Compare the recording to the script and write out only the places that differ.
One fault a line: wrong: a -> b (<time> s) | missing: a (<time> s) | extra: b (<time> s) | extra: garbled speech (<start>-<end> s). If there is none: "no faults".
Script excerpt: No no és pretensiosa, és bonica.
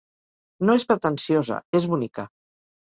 missing: no (0.8 s)